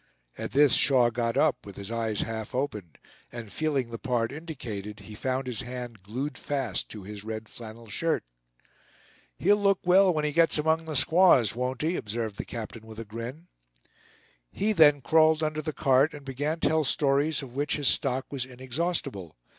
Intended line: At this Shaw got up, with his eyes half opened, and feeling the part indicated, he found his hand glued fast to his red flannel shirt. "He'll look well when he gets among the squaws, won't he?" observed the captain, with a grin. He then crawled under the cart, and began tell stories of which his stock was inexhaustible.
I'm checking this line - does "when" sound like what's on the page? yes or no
yes